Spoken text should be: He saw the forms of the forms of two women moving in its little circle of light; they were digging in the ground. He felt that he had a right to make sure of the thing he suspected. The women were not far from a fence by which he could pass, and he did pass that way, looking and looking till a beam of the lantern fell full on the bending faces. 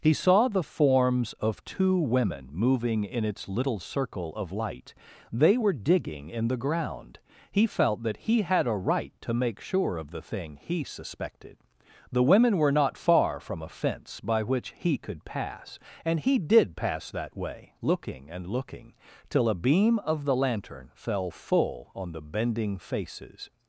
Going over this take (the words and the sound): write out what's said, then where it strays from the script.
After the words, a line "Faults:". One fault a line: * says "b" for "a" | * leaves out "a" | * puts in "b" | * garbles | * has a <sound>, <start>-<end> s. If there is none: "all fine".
He saw the forms of two women moving in its little circle of light; they were digging in the ground. He felt that he had a right to make sure of the thing he suspected. The women were not far from a fence by which he could pass, and he did pass that way, looking and looking till a beam of the lantern fell full on the bending faces.
Faults:
* leaves out "the forms of"